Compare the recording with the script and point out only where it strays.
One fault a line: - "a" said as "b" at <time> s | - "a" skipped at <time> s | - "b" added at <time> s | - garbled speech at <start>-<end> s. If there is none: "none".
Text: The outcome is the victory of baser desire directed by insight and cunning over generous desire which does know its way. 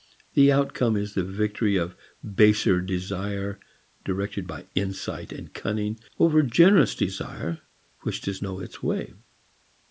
none